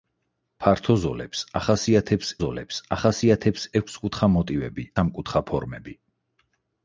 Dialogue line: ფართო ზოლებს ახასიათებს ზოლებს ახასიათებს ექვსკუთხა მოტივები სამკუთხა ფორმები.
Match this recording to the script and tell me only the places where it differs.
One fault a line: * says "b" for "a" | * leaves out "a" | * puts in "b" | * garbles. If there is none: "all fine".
all fine